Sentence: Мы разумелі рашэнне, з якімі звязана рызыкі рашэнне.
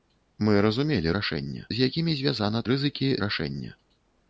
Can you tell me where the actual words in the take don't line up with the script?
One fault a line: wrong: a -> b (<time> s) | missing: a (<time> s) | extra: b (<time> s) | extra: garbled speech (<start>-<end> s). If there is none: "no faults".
no faults